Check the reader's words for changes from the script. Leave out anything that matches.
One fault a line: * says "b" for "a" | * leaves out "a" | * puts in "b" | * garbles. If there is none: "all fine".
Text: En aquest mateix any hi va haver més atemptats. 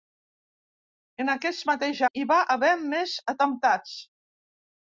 * leaves out "any"